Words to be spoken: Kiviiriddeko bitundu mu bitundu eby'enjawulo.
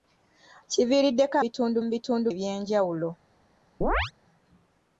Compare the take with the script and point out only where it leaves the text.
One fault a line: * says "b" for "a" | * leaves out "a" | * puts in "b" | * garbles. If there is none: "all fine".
all fine